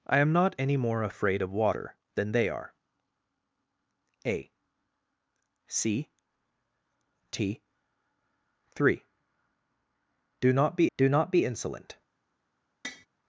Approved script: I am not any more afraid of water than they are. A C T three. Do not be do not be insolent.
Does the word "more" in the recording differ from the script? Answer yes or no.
no